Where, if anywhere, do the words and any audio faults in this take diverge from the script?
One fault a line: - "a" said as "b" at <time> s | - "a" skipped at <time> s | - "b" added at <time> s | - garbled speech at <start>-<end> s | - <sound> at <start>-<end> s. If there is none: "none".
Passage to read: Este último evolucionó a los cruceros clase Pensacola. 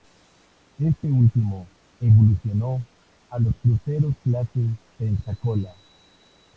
none